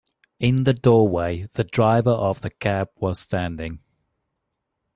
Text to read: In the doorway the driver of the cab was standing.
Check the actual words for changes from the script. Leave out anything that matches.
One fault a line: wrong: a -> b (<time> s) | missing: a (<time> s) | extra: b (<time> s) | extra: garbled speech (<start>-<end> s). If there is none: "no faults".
no faults